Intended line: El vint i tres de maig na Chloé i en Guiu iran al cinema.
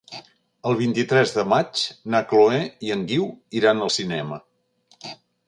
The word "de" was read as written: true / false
true